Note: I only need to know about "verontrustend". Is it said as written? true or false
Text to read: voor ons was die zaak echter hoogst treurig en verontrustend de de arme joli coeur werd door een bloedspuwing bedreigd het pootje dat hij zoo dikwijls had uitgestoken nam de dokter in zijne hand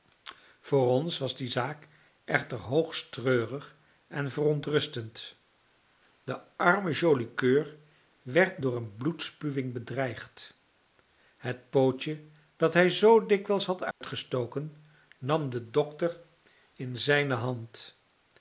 true